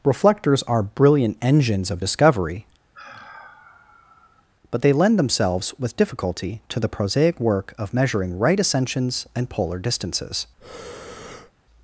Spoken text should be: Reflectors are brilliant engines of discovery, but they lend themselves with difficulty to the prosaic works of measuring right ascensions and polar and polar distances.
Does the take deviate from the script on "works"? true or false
true